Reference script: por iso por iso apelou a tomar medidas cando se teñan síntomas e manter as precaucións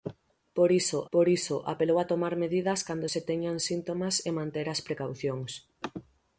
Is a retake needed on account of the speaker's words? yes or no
no